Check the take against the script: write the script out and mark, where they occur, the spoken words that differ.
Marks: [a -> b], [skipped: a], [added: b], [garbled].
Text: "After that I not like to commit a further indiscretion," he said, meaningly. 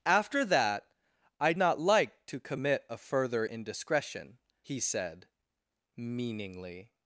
"After that I not like to commit a further indiscretion," he said, meaningly.